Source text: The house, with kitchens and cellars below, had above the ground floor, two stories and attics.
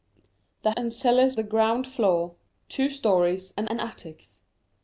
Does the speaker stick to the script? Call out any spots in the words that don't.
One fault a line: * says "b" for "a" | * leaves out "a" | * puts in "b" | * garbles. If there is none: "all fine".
* leaves out "house with kitchens"
* leaves out "below had above"
* puts in "and"